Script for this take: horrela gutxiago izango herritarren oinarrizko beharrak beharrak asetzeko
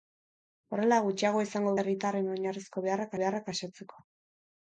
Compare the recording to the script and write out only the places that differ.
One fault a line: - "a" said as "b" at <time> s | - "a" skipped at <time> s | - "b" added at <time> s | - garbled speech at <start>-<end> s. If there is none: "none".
none